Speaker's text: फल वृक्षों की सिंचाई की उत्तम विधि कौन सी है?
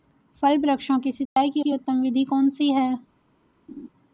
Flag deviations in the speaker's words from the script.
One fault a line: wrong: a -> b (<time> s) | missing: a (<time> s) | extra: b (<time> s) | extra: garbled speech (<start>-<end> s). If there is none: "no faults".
extra: की (1.6 s)